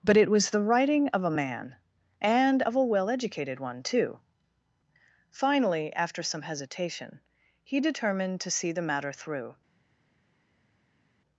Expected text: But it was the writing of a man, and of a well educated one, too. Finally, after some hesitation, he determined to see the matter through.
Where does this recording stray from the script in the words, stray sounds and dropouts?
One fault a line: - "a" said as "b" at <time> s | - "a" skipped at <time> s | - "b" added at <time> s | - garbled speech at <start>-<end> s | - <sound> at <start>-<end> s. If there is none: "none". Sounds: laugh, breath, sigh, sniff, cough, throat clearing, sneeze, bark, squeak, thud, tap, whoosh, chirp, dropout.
none